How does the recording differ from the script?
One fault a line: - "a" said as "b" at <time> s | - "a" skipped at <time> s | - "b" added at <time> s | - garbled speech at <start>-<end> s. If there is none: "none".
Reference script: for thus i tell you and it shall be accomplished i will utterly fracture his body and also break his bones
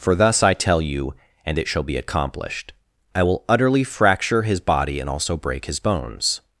none